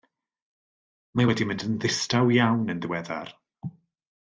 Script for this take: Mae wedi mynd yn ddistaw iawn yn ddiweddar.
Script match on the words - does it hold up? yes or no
yes